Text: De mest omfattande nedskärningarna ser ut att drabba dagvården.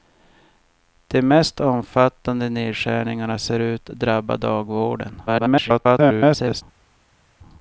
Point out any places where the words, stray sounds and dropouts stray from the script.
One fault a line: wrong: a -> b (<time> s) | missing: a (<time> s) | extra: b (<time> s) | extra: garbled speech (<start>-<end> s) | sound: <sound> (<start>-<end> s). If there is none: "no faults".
missing: att (3.9 s)
extra: garbled speech (5.3-6.6 s)